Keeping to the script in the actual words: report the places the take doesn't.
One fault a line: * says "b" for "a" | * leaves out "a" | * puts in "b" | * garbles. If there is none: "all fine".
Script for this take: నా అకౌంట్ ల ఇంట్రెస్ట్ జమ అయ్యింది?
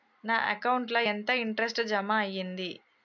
* puts in "ఎంత"